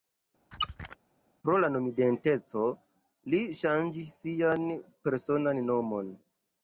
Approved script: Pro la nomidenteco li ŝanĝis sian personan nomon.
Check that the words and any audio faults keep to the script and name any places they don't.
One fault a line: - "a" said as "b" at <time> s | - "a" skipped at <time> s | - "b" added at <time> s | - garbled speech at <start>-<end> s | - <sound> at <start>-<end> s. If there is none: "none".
- squeak at 0.5-1.0 s